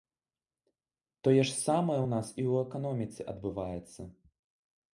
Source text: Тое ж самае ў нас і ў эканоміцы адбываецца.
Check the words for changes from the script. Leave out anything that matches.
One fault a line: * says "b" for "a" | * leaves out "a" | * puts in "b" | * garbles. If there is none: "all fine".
all fine